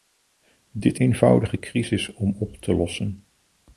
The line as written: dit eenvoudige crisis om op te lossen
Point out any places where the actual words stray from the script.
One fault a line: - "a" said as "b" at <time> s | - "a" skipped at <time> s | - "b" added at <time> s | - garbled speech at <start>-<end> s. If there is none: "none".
none